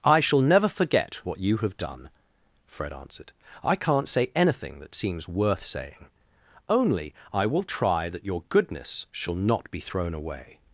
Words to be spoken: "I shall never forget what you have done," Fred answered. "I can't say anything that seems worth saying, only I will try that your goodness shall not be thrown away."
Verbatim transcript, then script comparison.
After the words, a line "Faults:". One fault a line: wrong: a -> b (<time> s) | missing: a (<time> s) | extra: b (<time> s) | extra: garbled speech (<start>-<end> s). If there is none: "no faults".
"I shall never forget what you have done," Fred answered. "I can't say anything that seems worth saying, only I will try that your goodness shall not be thrown away."
Faults:
no faults